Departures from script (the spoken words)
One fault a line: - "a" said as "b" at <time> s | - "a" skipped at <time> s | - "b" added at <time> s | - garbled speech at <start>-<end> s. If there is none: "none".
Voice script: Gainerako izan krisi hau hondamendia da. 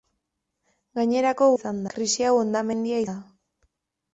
none